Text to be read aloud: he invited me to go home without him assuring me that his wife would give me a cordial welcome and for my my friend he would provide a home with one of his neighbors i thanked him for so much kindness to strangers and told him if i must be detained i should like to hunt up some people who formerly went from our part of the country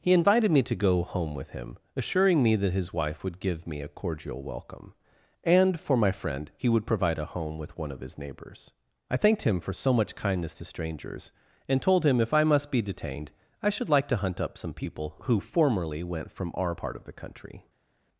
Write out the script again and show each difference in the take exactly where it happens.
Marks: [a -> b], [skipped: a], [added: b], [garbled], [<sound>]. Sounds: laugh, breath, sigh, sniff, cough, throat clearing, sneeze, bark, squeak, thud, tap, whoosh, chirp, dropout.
he invited me to go home [without -> with] him assuring me that his wife would give me a cordial welcome and for my [skipped: my] friend he would provide a home with one of his neighbors i thanked him for so much kindness to strangers and told him if i must be detained i should like to hunt up some people who formerly went from our part of the country